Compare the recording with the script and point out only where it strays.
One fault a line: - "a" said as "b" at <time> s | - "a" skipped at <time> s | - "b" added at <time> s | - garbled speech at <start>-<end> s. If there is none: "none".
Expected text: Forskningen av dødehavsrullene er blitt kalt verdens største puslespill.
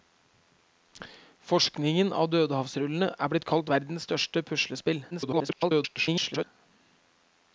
- garbled speech at 5.1-6.4 s